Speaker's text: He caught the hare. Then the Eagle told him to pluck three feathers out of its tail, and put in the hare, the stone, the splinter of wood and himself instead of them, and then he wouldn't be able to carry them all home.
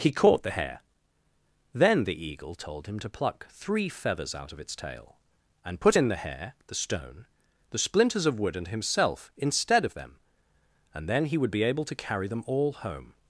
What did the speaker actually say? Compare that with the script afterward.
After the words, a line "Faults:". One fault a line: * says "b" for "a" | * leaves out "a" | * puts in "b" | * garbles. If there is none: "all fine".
He caught the hare. Then the Eagle told him to pluck three feathers out of its tail, and put in the hare, the stone, the splinters of wood and himself instead of them, and then he would be able to carry them all home.
Faults:
* says "splinters" for "splinter"
* says "would" for "wouldn't"